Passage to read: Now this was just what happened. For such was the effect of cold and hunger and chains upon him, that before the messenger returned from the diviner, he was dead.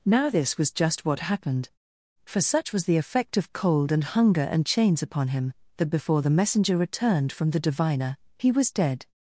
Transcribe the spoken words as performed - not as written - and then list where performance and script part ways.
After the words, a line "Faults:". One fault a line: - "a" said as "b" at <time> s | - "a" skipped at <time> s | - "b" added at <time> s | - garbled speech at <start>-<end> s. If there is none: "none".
Now this was just what happened. For such was the effect of cold and hunger and chains upon him, that before the messenger returned from the diviner, he was dead.
Faults:
none